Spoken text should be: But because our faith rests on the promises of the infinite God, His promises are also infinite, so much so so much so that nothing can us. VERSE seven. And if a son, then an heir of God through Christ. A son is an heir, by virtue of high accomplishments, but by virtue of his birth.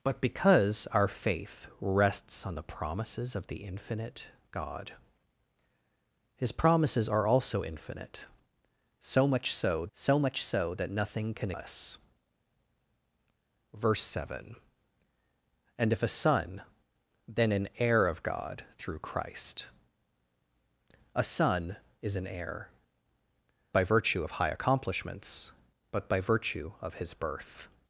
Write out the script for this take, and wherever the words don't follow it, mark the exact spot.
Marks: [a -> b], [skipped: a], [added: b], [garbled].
But because our faith rests on the promises of the infinite God, His promises are also infinite, so much so so much so that nothing can us. VERSE seven. And if a son, then an heir of God through Christ. A son is an heir, by virtue of high accomplishments, but by virtue of his birth.